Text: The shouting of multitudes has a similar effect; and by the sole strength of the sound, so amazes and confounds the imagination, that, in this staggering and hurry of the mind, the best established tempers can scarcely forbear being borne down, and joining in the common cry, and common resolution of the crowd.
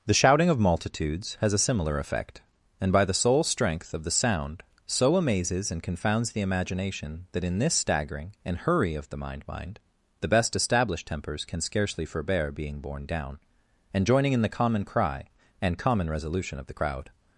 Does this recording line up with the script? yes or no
no